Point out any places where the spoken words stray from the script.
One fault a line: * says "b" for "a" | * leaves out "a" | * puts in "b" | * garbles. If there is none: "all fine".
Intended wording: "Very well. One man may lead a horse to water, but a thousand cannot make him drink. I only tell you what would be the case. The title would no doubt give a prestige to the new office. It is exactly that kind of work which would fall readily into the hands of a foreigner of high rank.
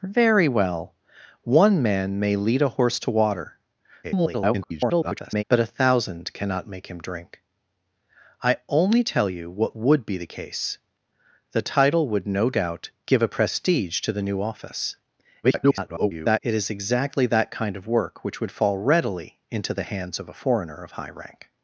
* garbles
* garbles